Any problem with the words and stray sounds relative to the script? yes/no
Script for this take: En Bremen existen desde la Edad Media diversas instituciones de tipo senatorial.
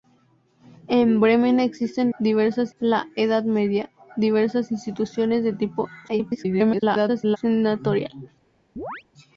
yes